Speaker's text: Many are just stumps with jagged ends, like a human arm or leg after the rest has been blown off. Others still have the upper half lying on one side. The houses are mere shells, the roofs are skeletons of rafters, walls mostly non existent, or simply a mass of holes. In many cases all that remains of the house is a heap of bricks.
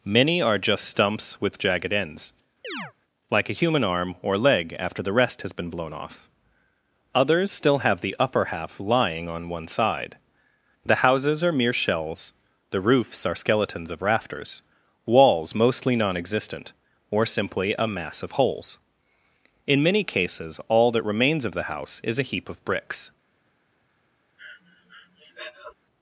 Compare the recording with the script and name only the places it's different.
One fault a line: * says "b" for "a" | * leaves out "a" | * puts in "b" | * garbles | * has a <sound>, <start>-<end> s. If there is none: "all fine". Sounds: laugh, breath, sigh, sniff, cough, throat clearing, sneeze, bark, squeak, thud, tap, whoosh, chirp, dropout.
* has a chirp, 2.6-2.9 s
* has a breath, 24.4-25.7 s